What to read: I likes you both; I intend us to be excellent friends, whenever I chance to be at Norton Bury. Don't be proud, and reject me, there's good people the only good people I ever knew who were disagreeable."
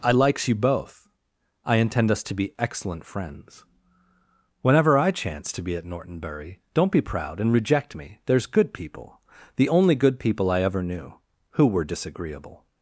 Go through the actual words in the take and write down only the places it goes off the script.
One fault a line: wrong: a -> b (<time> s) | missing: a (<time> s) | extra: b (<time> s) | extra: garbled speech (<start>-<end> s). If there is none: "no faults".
no faults